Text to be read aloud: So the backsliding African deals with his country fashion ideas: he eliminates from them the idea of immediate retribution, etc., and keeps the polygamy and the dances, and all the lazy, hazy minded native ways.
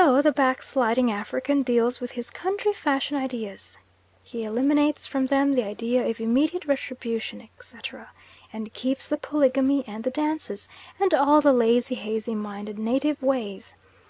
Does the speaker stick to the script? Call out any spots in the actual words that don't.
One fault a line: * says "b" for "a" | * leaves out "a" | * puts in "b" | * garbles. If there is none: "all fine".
all fine